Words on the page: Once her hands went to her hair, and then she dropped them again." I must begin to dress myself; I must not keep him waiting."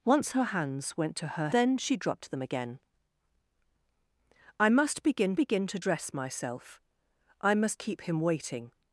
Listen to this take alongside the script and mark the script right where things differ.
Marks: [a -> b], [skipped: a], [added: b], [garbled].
Once her hands went to her [skipped: hair, and] then she dropped them again." I must begin [added: begin] to dress myself; I must [skipped: not] keep him waiting."